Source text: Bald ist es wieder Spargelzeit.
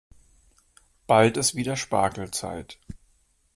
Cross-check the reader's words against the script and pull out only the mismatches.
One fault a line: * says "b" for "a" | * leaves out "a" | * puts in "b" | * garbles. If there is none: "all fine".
* leaves out "ist"